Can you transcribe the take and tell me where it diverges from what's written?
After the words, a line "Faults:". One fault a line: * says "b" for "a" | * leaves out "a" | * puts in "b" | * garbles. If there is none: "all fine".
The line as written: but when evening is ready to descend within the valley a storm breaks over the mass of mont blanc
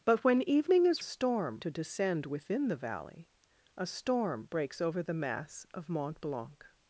but when evening is storm to descend within the valley a storm breaks over the mass of mont blanc
Faults:
* says "storm" for "ready"